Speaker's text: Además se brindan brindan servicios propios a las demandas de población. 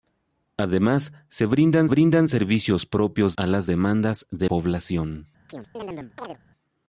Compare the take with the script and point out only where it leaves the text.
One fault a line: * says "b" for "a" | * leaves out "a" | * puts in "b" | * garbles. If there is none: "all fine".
all fine